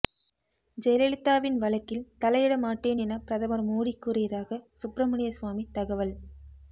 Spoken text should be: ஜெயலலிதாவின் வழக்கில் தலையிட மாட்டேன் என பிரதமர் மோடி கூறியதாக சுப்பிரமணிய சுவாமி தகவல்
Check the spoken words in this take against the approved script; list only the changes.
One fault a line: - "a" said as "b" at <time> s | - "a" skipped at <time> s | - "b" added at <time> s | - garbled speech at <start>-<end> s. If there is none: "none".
none